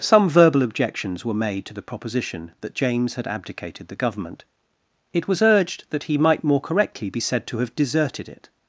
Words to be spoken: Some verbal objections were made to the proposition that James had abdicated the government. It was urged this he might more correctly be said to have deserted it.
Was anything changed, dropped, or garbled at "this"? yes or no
yes